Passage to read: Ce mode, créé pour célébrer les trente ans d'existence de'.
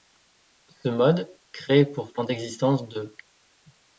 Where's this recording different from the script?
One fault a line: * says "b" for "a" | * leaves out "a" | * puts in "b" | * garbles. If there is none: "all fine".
* leaves out "célébrer les trente"